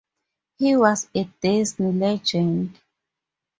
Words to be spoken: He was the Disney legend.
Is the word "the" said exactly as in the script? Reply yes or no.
no